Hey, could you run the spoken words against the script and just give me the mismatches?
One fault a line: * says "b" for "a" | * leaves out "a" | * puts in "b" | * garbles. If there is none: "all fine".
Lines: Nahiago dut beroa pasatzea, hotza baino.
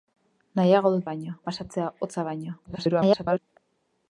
* says "baino" for "beroa"
* garbles